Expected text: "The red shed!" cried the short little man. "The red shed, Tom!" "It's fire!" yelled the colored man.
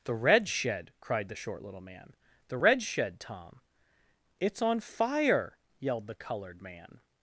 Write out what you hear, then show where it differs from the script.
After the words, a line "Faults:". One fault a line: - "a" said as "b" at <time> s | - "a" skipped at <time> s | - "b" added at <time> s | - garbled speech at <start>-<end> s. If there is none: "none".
"The red shed!" cried the short little man. "The red shed, Tom!" "It's on fire!" yelled the colored man.
Faults:
- "on" added at 4.6 s